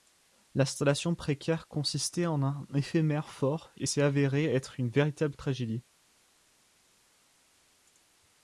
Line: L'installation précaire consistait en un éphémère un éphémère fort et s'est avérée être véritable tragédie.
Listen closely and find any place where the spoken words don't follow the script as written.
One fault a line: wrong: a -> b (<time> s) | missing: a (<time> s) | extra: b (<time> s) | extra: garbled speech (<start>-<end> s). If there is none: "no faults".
missing: un éphémère (3.3 s)
extra: une (4.8 s)